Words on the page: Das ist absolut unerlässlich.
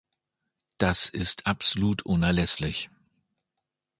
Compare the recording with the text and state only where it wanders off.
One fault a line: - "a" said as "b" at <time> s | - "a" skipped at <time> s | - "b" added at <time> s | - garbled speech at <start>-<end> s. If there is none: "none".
none